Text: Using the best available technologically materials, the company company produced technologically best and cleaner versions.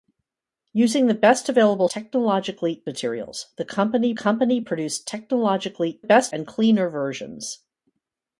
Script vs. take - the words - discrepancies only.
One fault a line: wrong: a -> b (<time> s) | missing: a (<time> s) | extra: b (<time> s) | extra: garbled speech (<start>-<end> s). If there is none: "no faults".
no faults